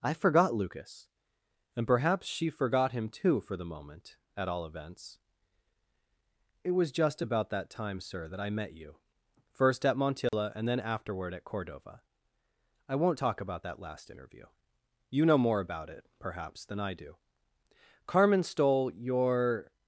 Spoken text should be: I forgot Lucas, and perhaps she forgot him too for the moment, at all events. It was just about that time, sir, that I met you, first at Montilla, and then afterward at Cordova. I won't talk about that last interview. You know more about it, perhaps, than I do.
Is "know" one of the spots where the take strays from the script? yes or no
no